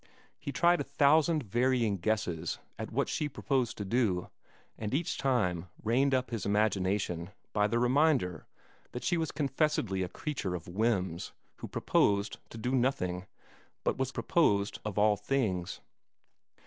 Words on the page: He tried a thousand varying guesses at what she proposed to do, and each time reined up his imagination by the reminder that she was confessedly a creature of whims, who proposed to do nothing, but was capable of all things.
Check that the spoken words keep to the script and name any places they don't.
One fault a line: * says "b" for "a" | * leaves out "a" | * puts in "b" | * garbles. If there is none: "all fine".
* says "proposed" for "capable"